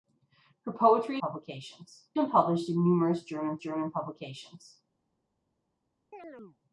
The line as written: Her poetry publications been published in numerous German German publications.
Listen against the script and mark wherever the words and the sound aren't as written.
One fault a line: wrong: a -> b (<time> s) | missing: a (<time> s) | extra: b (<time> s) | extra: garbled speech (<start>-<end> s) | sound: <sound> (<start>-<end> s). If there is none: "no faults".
sound: chirp (6.1-6.6 s)